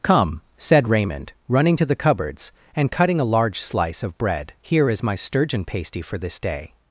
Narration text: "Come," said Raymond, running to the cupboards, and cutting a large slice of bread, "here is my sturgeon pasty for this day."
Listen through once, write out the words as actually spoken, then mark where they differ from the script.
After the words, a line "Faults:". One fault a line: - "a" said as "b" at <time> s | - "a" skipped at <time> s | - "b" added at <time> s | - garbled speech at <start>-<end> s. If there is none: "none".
"Come," said Raymond, running to the cupboards, and cutting a large slice of bread, "here is my sturgeon pasty for this day."
Faults:
none